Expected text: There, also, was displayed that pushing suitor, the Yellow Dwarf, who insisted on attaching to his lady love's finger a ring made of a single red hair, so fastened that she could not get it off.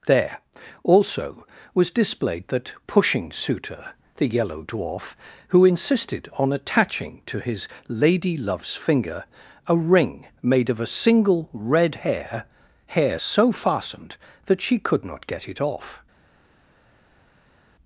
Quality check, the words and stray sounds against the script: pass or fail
fail